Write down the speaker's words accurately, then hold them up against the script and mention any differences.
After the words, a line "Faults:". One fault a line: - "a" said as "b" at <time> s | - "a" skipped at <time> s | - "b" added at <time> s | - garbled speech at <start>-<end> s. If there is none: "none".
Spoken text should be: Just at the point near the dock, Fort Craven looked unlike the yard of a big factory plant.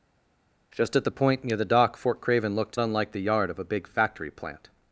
Just at the point near the dock, Fort Craven looked unlike the yard of a big factory plant.
Faults:
none